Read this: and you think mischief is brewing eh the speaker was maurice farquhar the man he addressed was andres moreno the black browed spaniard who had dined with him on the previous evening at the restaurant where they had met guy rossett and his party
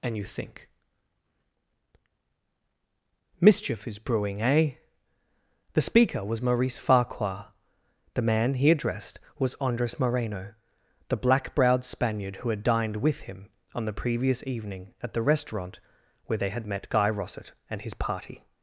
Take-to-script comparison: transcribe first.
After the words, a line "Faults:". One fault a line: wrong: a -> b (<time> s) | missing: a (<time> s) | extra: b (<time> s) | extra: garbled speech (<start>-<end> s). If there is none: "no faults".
and you think mischief is brewing eh the speaker was maurice farquhar the man he addressed was andres moreno the black browed spaniard who had dined with him on the previous evening at the restaurant where they had met guy rossett and his party
Faults:
no faults